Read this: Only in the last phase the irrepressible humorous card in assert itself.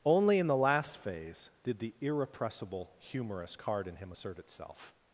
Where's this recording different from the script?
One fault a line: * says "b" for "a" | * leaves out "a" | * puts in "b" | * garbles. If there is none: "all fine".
* puts in "did"
* puts in "him"